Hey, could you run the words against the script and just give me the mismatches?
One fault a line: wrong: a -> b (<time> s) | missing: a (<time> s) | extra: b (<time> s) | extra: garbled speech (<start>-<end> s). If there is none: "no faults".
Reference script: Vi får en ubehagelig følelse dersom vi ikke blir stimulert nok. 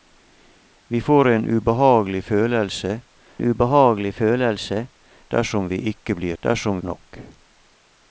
extra: ubehagelig følelse (3.4 s)
wrong: stimulert -> dersom (6.4 s)